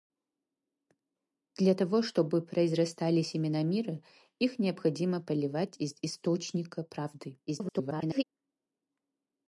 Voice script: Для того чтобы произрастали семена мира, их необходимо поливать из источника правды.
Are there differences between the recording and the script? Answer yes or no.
yes